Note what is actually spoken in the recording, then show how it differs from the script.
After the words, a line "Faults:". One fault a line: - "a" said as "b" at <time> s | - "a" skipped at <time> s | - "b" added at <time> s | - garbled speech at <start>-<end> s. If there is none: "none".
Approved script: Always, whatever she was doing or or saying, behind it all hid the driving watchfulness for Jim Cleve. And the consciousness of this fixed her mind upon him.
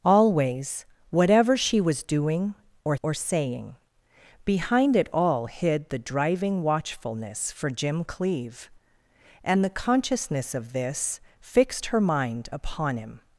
Always, whatever she was doing or or saying, behind it all hid the driving watchfulness for Jim Cleve. And the consciousness of this fixed her mind upon him.
Faults:
none